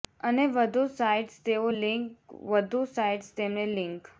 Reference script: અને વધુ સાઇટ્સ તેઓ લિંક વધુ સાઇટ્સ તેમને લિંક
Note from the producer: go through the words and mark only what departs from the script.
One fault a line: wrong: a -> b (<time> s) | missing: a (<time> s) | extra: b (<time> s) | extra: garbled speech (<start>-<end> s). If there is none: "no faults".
no faults